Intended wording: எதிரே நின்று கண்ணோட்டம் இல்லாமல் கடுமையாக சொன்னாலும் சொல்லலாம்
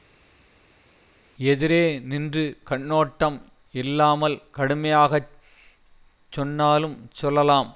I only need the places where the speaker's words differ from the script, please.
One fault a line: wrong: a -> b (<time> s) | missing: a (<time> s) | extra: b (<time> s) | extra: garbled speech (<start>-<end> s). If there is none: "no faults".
no faults